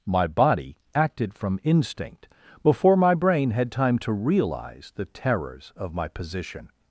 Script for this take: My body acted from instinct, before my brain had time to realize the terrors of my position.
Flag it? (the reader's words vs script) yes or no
no